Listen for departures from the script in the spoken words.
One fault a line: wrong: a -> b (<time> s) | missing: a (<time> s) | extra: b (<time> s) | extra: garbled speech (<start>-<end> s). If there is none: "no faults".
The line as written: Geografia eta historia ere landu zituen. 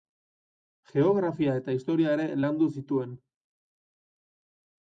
no faults